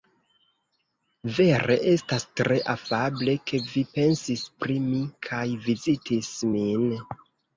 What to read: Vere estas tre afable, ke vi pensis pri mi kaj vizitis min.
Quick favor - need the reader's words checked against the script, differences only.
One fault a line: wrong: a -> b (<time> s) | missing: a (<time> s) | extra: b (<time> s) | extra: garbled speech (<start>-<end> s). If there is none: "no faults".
no faults